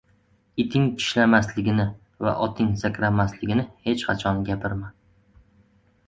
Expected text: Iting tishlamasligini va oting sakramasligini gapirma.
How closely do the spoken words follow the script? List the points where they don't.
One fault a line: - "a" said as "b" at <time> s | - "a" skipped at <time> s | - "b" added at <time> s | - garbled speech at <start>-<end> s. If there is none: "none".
- "hech qachon" added at 3.9 s